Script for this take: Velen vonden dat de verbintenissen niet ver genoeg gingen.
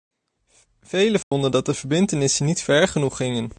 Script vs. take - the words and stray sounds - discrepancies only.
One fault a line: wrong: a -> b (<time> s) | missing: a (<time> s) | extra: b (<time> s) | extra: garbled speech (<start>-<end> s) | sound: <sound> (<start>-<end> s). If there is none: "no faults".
sound: dropout (1.2-1.3 s)